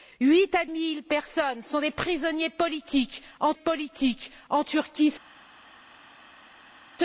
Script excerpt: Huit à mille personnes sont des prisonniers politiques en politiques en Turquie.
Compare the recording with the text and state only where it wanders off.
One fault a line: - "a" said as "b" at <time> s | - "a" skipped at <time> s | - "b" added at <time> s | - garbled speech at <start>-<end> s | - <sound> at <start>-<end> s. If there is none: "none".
none